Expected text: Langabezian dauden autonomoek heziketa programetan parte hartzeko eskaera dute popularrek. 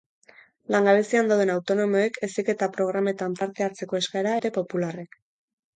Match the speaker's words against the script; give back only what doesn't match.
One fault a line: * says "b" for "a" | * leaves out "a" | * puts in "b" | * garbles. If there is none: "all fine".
all fine